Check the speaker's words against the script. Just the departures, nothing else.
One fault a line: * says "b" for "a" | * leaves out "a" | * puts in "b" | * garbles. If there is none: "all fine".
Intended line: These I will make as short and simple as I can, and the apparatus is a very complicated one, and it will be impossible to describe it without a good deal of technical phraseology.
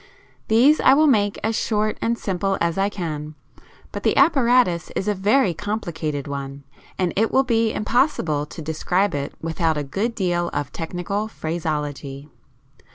* says "but" for "and"